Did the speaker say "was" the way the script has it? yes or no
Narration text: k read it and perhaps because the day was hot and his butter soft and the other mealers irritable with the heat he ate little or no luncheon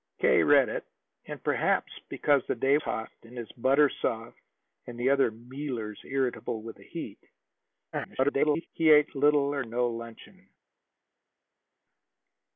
no